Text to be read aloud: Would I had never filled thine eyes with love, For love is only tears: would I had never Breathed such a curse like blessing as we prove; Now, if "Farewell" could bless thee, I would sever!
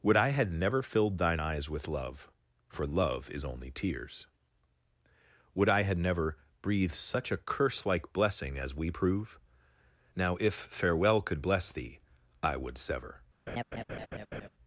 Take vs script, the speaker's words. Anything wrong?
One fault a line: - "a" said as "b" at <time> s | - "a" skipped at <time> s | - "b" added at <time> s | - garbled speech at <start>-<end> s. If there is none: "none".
none